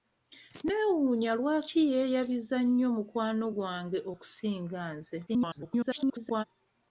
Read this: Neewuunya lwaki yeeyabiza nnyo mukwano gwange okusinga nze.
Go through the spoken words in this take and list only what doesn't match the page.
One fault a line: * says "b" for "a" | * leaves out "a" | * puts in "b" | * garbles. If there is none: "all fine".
* garbles